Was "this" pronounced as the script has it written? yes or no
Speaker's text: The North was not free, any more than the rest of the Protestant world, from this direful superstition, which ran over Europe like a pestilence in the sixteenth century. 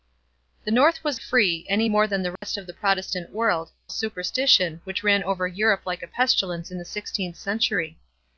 no